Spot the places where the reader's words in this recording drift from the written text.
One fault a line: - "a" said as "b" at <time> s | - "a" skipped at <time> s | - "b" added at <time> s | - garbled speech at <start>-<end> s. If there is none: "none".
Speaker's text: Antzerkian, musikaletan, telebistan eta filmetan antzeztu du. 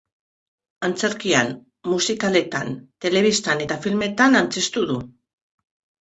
none